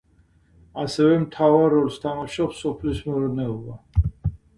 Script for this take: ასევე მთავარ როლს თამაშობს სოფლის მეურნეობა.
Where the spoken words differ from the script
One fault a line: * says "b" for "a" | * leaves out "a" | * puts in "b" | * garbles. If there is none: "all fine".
all fine